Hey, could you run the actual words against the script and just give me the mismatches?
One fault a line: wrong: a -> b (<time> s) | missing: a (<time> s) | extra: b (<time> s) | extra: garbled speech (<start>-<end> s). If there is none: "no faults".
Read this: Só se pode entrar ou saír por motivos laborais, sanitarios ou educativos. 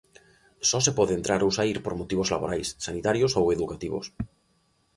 no faults